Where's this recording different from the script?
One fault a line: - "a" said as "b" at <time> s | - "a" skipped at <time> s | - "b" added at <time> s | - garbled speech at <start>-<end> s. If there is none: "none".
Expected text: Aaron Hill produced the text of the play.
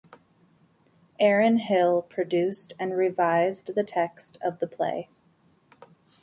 - "and revised" added at 2.8 s